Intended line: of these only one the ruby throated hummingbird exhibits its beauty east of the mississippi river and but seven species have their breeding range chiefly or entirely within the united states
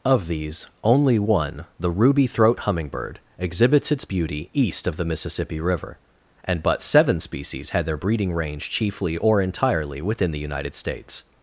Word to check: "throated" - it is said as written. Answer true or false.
false